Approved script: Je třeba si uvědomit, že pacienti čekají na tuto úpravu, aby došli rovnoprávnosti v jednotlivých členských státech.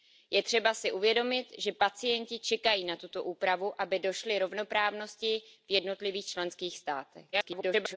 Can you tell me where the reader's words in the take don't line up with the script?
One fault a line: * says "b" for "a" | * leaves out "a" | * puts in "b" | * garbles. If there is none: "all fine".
* garbles